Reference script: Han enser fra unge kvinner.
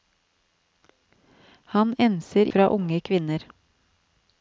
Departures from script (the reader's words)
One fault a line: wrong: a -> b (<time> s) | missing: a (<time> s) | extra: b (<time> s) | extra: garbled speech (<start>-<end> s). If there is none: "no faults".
no faults